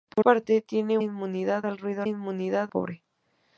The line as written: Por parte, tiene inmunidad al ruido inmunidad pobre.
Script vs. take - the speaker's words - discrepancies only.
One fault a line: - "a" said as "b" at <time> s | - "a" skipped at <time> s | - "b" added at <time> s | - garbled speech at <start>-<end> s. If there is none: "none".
none